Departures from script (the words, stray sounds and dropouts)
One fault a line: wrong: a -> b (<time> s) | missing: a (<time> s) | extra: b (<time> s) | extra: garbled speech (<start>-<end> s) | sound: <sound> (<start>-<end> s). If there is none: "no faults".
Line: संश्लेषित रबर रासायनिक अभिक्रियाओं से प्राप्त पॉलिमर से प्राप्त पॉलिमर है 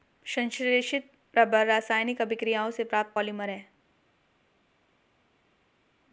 missing: से प्राप्त पॉलिमर (3.5 s)